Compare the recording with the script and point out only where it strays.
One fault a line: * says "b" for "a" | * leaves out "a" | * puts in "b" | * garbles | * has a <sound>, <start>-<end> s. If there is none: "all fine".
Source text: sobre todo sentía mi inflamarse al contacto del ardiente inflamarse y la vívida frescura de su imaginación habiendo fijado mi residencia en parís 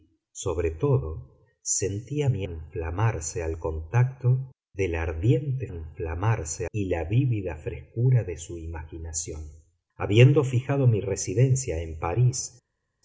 all fine